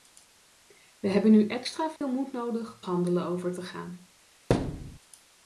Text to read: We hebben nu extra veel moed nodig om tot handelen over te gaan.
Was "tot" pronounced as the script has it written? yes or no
no